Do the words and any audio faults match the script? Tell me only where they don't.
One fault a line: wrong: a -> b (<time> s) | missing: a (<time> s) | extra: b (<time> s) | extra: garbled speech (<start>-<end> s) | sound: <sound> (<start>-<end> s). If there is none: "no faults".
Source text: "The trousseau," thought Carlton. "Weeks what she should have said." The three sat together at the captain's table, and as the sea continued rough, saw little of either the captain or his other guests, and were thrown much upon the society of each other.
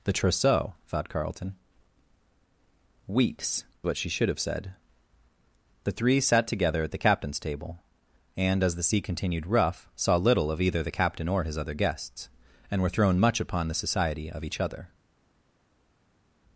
no faults